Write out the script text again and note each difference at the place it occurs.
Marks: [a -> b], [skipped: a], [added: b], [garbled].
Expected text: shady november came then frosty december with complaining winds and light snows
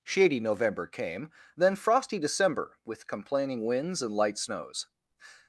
shady november came then frosty december with complaining winds and light snows